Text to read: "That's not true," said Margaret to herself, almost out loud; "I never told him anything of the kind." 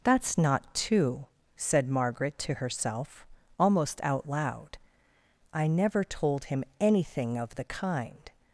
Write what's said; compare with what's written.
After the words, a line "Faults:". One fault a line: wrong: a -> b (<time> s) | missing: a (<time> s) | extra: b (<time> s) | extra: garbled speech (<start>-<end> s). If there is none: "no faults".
"That's not two," said Margaret to herself, almost out loud; "I never told him anything of the kind."
Faults:
wrong: true -> two (0.7 s)